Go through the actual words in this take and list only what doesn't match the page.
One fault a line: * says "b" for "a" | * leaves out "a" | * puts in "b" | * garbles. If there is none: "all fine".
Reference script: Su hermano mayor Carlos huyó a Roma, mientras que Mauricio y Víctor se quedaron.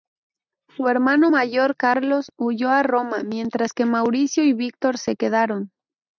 all fine